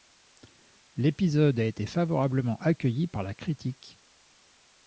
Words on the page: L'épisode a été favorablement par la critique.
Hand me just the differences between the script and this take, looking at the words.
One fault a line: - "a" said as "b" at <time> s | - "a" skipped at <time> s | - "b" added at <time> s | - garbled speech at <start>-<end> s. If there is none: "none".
- "accueilli" added at 2.6 s